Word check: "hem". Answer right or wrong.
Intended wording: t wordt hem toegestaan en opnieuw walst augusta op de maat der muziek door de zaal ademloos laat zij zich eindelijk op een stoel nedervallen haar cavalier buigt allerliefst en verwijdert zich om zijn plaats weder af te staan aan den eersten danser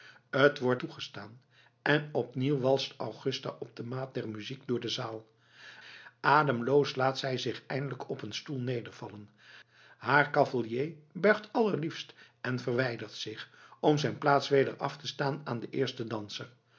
wrong